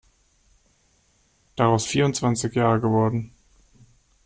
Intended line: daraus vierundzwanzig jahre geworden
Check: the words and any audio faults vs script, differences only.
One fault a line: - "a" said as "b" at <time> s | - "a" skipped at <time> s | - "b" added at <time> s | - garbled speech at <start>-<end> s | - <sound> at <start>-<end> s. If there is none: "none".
none